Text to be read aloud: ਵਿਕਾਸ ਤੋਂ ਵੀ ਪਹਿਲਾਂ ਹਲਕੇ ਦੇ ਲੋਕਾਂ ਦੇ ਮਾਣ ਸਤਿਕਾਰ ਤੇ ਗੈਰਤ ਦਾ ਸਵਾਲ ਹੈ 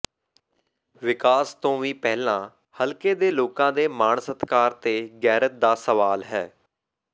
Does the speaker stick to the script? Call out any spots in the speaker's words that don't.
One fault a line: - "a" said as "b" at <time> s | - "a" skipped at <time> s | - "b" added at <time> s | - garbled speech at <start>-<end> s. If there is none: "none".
none